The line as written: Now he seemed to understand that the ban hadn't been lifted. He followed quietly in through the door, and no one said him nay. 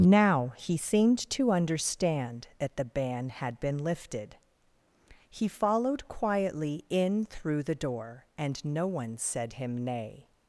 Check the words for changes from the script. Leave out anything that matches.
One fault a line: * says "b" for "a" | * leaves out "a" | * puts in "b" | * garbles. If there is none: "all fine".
* says "had" for "hadn't"